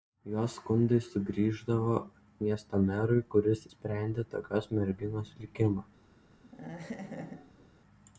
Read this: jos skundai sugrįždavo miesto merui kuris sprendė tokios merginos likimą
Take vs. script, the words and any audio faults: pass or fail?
fail